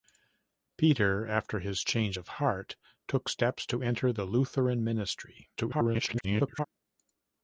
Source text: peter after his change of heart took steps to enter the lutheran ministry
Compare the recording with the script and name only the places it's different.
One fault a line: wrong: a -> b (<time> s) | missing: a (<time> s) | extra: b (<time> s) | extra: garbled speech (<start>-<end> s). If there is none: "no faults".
extra: garbled speech (5.6-6.7 s)